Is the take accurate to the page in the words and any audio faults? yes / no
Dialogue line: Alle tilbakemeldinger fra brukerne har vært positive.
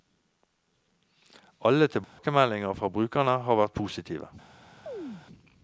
no